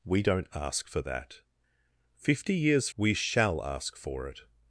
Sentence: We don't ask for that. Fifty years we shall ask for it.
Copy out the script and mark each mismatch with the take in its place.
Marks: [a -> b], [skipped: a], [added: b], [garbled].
We don't ask for that. Fifty years we shall ask for it.